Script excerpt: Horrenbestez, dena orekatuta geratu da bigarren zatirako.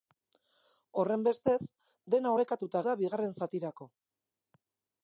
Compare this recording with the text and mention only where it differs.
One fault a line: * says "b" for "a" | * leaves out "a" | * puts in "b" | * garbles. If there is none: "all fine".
* leaves out "geratu"